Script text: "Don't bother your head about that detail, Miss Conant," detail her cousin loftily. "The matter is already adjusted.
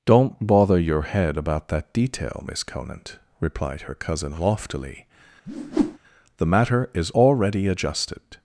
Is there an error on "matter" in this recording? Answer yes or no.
no